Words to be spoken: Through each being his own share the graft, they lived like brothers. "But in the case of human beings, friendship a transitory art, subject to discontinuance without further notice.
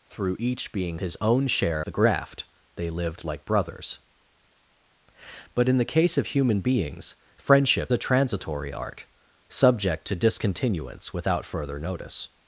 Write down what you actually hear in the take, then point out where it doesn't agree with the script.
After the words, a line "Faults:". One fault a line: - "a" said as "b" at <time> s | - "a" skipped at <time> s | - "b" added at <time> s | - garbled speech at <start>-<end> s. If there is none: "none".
Through each being his own share the graft, they lived like brothers. "But in the case of human beings, friendship a transitory art, subject to discontinuance without further notice.
Faults:
none